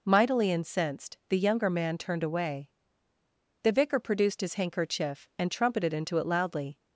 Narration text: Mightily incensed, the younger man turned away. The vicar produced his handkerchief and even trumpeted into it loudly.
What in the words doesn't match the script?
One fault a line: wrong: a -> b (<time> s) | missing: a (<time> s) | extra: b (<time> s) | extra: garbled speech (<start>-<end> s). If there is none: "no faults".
missing: even (5.5 s)